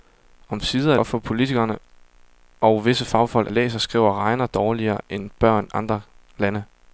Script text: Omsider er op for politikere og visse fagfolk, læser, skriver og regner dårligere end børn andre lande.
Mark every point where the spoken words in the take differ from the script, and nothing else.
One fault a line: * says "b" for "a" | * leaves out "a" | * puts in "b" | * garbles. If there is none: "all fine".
all fine